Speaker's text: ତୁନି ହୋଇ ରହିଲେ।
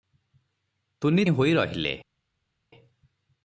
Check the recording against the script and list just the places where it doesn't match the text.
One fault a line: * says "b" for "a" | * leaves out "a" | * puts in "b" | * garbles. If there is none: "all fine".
all fine